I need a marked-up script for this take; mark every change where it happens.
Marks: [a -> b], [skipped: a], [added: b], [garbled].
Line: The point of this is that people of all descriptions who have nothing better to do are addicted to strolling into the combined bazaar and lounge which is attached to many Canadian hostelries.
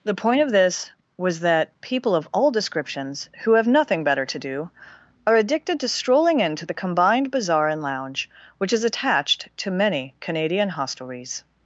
The point of this [is -> was] that people of all descriptions who have nothing better to do are addicted to strolling into the combined bazaar and lounge which is attached to many Canadian hostelries.